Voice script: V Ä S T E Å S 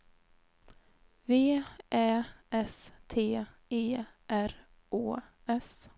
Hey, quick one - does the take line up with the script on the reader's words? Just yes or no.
no